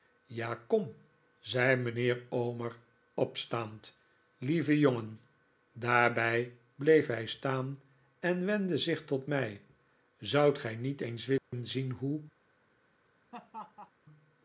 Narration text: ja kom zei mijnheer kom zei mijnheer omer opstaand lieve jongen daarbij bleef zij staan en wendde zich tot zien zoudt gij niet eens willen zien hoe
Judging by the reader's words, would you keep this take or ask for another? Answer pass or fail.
fail